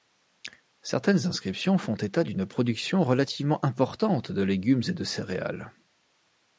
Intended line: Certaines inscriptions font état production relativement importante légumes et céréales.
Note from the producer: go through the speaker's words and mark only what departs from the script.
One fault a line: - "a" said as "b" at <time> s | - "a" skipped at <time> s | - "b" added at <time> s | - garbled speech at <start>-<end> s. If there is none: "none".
- "d'une" added at 2.2 s
- "de" added at 4.3 s
- "de" added at 4.9 s